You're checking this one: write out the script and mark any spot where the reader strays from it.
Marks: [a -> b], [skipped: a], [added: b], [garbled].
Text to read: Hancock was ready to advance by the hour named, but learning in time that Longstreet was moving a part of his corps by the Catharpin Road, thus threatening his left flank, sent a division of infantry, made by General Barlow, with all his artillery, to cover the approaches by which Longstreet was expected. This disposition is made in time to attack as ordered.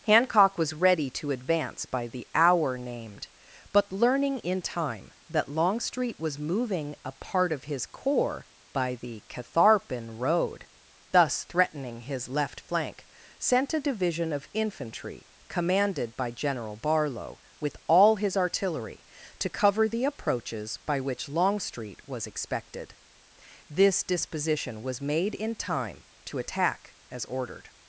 Hancock was ready to advance by the hour named, but learning in time that Longstreet was moving a part of his corps by the Catharpin Road, thus threatening his left flank, sent a division of infantry, [made -> commanded] by General Barlow, with all his artillery, to cover the approaches by which Longstreet was expected. This disposition [is -> was] made in time to attack as ordered.